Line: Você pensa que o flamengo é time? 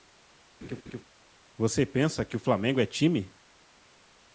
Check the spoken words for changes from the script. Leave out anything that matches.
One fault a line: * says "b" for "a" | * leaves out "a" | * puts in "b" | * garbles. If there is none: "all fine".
all fine